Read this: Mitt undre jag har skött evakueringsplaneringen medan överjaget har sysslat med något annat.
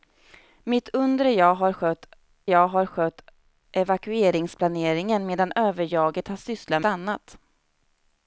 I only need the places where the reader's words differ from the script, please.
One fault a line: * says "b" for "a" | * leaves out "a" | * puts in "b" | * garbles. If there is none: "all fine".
* puts in "jag har skött"
* leaves out "med något"